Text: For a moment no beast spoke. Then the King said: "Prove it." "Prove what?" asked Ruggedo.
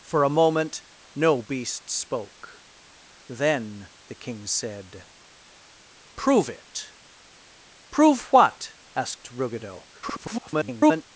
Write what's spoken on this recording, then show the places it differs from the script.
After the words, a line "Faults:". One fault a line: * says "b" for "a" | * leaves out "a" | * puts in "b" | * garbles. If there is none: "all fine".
For a moment no beast spoke. Then the King said: "Prove it." "Prove what?" asked Ruggedo. [garbled]
Faults:
* garbles